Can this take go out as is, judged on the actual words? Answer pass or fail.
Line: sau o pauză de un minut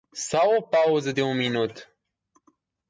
pass